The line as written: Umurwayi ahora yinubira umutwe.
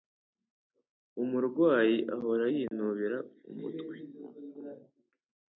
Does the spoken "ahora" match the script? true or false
true